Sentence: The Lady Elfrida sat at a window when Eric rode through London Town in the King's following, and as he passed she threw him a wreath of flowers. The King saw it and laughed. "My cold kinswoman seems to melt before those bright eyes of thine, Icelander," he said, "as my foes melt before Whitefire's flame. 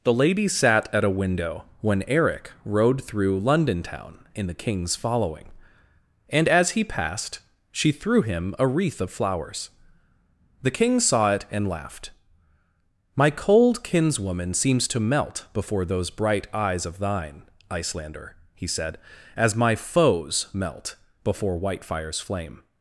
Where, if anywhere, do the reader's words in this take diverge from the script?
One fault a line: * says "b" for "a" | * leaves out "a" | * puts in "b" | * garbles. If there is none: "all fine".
* leaves out "Elfrida"